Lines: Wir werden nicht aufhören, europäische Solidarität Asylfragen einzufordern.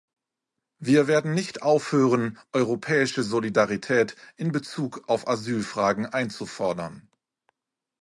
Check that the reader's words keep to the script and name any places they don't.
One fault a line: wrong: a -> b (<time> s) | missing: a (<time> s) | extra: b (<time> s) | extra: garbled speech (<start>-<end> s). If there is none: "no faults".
extra: in Bezug auf (4.3 s)